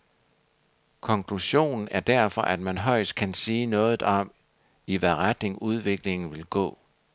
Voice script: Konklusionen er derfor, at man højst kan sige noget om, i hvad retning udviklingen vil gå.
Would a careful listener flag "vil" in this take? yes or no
no